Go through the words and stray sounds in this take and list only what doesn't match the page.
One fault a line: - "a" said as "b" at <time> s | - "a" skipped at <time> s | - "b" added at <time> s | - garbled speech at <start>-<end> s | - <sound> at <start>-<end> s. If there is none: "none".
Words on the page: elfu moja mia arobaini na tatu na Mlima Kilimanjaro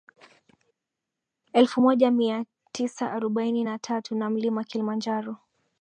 - "tisa" added at 2.7 s